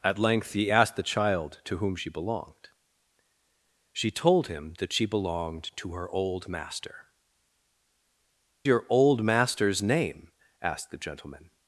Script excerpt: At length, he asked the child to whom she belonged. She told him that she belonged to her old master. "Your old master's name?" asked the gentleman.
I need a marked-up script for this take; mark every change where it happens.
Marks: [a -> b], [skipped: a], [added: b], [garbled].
At length, he asked the child to whom she belonged. She told him that she belonged to her old master. "Your old master's name?" asked the gentleman.